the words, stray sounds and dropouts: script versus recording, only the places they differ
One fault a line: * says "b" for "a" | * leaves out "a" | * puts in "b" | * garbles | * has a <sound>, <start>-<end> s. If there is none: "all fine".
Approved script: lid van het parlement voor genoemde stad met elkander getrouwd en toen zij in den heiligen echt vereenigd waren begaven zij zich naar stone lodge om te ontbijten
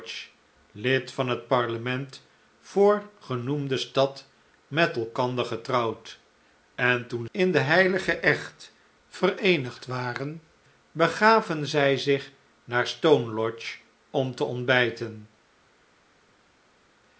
* leaves out "zij"